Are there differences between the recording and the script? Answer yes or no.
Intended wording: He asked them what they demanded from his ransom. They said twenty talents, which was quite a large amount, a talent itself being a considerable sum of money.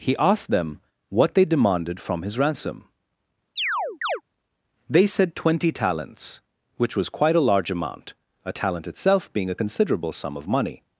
no